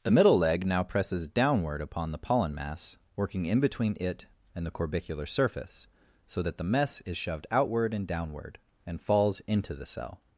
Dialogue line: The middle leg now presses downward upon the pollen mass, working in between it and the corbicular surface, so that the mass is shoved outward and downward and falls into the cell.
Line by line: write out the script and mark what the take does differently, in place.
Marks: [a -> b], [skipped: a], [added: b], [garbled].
The middle leg now presses downward upon the pollen mass, working in between it and the corbicular surface, so that the [mass -> mess] is shoved outward and downward and falls into the cell.